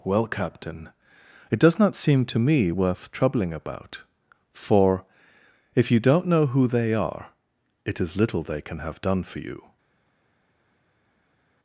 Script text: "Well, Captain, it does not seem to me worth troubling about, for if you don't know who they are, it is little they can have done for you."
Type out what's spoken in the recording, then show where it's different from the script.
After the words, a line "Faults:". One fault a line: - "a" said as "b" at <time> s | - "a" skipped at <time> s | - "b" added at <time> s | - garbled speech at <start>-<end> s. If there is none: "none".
"Well, Captain, it does not seem to me worth troubling about, for if you don't know who they are, it is little they can have done for you."
Faults:
none